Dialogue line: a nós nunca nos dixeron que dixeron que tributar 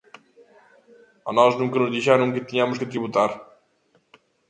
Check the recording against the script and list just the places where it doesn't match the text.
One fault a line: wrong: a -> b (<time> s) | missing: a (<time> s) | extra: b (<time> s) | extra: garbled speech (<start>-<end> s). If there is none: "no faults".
wrong: dixeron -> tiñamos (2.5 s)